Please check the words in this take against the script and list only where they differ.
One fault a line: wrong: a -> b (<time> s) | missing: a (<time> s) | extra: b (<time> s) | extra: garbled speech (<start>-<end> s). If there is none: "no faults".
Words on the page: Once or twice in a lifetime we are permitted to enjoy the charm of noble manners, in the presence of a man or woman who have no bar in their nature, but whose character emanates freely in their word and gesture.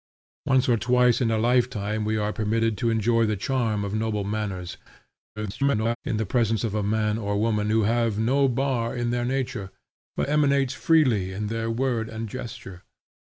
extra: garbled speech (5.4-6.0 s)
missing: whose character (10.3 s)